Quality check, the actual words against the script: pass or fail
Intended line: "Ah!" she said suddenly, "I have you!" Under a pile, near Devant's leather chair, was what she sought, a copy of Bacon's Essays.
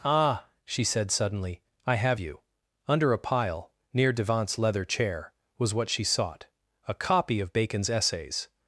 pass